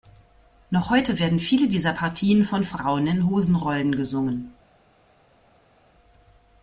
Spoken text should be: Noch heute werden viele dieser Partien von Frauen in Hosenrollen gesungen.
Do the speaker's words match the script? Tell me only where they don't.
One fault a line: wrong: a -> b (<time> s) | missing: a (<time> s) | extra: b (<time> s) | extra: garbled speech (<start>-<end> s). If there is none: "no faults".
no faults